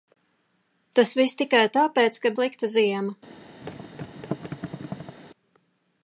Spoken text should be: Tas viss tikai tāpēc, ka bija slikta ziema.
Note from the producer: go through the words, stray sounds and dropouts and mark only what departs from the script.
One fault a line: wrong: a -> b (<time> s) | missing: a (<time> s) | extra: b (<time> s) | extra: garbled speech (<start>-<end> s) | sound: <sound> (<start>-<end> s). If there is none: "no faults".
missing: bija (2.3 s)
sound: thud (3.6-5.2 s)